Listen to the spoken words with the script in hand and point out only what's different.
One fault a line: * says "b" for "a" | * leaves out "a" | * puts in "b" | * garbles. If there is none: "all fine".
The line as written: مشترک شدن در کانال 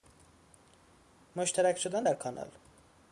all fine